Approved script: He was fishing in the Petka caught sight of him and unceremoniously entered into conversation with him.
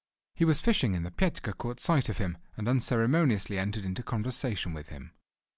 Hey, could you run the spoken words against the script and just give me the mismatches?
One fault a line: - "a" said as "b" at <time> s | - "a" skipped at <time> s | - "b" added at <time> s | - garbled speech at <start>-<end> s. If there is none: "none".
none